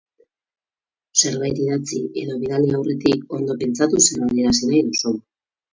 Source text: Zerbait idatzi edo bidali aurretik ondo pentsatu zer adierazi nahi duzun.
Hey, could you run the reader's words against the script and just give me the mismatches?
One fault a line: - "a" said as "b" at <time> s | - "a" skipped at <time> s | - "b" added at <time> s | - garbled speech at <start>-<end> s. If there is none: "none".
none